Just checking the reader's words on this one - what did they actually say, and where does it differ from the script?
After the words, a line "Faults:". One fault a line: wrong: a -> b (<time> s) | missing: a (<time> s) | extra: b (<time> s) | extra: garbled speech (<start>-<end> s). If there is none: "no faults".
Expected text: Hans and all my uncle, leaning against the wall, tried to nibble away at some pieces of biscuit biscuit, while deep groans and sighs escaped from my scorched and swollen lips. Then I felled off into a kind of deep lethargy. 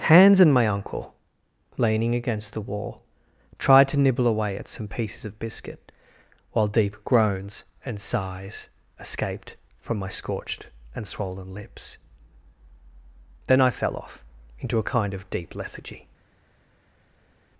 Hans and my uncle, leaning against the wall, tried to nibble away at some pieces of biscuit, while deep groans and sighs escaped from my scorched and swollen lips. Then I fell off into a kind of deep lethargy.
Faults:
missing: all (0.5 s)
missing: biscuit (5.9 s)
wrong: felled -> fell (13.7 s)